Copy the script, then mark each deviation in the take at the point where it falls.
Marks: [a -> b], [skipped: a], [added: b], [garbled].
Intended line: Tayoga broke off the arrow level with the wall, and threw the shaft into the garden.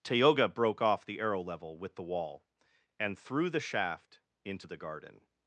Tayoga broke off the arrow level with the wall, and threw the shaft into the garden.